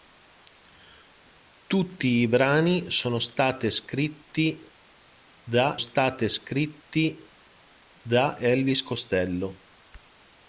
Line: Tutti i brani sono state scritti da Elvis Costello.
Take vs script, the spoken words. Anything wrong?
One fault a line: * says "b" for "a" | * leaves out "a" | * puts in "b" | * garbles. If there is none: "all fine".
* puts in "state scritti da"